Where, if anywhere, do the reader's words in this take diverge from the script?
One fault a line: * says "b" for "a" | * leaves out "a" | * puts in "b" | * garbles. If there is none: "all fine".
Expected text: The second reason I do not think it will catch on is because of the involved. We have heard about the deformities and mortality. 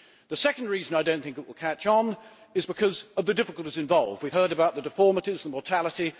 * puts in "difficulties"